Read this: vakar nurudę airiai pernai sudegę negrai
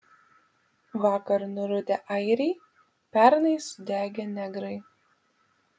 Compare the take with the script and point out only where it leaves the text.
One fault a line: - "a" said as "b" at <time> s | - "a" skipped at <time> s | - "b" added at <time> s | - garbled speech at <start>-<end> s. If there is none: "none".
none